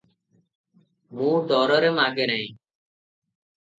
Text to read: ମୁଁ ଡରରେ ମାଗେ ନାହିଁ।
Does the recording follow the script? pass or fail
pass